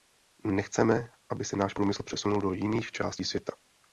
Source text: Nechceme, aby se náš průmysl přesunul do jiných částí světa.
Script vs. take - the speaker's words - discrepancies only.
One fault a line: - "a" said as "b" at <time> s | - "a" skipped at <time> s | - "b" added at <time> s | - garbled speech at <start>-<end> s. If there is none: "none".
none